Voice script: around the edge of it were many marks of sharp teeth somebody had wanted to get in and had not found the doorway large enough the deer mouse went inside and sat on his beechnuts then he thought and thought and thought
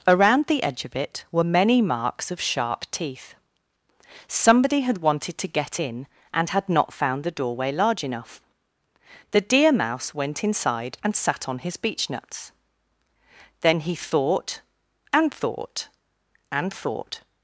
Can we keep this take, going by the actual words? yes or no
yes